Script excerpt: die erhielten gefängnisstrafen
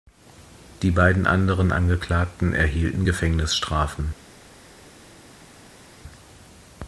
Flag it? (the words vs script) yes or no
yes